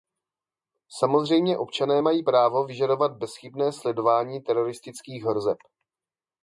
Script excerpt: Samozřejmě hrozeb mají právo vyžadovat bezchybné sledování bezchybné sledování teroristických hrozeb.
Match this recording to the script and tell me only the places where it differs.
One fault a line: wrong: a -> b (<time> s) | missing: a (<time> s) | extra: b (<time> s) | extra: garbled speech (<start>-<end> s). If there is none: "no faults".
wrong: hrozeb -> občané (1.6 s)
missing: bezchybné sledování (4.4 s)